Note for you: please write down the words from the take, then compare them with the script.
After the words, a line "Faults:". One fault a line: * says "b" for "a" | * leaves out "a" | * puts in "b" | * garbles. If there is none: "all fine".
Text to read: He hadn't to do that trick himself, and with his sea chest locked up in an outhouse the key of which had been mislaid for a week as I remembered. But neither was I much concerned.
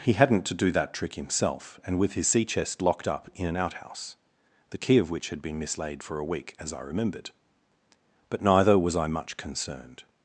He hadn't to do that trick himself, and with his sea chest locked up in an outhouse the key of which had been mislaid for a week as I remembered. But neither was I much concerned.
Faults:
all fine